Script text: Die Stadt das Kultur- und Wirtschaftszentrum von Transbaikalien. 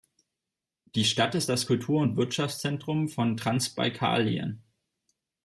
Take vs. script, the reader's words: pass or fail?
fail